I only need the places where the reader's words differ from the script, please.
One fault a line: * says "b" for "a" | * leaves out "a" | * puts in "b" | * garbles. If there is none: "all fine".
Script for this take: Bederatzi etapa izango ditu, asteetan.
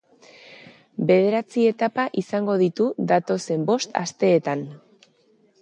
* puts in "datozen bost"